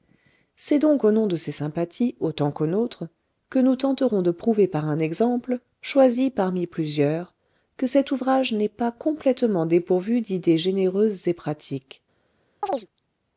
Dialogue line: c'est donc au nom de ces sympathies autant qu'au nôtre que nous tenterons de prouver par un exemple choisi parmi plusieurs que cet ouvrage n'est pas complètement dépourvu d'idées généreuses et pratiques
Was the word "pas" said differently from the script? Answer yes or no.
no